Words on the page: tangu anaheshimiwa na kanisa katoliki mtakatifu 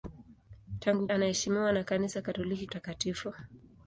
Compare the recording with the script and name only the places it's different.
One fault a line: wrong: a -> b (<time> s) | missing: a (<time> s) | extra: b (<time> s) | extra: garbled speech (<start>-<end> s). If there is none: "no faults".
no faults